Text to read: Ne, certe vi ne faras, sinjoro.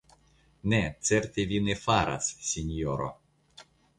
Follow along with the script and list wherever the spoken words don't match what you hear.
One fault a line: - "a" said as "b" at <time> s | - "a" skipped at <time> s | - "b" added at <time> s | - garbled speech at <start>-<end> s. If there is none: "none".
none